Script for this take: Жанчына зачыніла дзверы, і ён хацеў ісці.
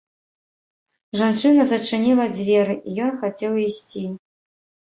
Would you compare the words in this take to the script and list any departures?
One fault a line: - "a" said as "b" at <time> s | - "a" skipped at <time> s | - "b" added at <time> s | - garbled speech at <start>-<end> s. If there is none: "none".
none